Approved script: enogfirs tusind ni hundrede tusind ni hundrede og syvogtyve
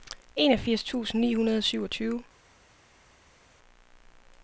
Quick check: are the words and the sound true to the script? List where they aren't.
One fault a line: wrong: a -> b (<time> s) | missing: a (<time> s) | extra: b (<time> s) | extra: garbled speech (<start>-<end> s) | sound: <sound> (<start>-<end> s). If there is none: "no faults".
missing: tusind ni hundrede (1.6 s)